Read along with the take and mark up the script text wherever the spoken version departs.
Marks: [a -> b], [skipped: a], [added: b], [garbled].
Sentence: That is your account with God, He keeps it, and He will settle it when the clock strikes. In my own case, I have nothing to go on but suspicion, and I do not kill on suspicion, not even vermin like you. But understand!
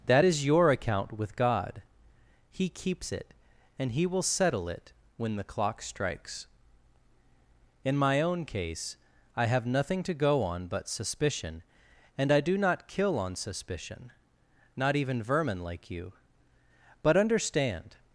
That is your account with God, He keeps it, and He will settle it when the clock strikes. In my own case, I have nothing to go on but suspicion, and I do not kill on suspicion, not even vermin like you. But understand!